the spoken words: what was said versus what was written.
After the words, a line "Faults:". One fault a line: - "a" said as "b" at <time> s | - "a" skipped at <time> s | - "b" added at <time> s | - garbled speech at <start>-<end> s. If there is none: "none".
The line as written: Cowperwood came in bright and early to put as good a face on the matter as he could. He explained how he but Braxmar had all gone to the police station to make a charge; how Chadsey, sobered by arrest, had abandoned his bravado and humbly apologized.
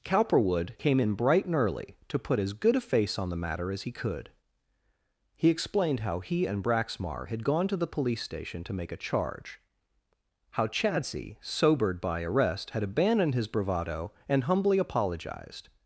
Cowperwood came in bright and early to put as good a face on the matter as he could. He explained how he and Braxmar had gone to the police station to make a charge; how Chadsey, sobered by arrest, had abandoned his bravado and humbly apologized.
Faults:
- "but" said as "and" at 6.5 s
- "all" skipped at 7.4 s